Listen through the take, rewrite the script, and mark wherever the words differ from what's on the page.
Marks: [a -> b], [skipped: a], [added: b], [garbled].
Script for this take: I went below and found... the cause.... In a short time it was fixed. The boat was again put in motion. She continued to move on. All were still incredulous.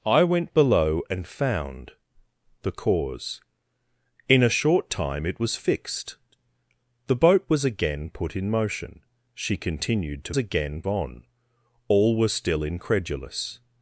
I went below and found... the cause.... In a short time it was fixed. The boat was again put in motion. She continued to [move -> again] on. All were still incredulous.